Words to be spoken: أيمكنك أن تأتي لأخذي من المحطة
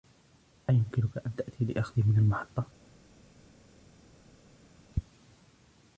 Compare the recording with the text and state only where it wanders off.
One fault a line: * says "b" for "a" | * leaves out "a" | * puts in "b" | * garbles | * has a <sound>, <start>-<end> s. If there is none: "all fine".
all fine